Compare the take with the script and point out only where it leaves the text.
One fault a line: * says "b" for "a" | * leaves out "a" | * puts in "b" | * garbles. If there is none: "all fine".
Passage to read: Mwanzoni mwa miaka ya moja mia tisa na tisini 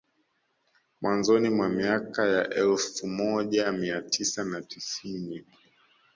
* puts in "elfu"